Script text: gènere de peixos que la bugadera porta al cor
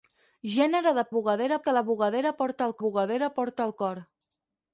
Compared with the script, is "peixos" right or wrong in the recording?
wrong